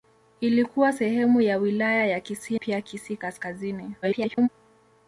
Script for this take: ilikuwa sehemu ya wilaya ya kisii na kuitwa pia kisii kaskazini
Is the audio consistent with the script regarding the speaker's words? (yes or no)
no